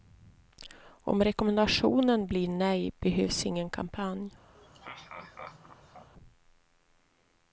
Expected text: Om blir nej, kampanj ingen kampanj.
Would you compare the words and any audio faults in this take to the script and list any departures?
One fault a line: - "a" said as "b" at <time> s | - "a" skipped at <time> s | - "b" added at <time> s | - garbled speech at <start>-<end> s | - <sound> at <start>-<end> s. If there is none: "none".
- "rekommendationen" added at 1.2 s
- "kampanj" said as "behövs" at 3.0 s
- laugh at 4.5-6.1 s